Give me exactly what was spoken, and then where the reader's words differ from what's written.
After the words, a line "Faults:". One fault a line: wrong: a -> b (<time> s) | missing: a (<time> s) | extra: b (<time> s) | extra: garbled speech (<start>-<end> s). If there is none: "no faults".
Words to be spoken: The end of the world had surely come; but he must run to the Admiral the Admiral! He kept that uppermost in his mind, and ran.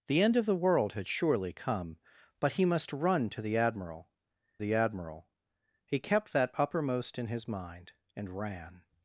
The end of the world had surely come; but he must run to the Admiral the Admiral! He kept that uppermost in his mind, and ran.
Faults:
no faults